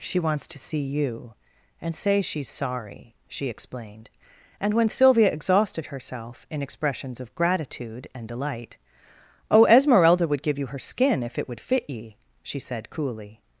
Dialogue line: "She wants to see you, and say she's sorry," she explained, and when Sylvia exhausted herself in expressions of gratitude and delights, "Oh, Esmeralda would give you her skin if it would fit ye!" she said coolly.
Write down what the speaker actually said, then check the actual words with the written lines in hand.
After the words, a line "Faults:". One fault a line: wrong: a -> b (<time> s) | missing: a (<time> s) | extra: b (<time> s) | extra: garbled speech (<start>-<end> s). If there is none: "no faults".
"She wants to see you, and say she's sorry," she explained, and when Sylvia exhausted herself in expressions of gratitude and delight, "Oh, Esmeralda would give you her skin if it would fit ye!" she said coolly.
Faults:
wrong: delights -> delight (8.3 s)